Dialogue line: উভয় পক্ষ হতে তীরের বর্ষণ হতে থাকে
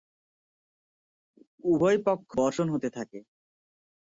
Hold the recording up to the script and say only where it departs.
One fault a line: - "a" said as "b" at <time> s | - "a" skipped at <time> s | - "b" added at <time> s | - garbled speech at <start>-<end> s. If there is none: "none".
- "হতে তীরের" skipped at 2.3 s